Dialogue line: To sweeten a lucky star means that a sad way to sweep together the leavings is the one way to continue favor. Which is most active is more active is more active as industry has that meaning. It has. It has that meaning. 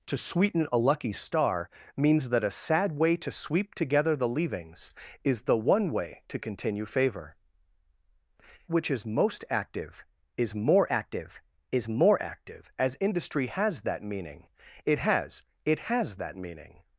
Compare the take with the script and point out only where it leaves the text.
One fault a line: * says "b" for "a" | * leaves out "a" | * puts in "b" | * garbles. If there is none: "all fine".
all fine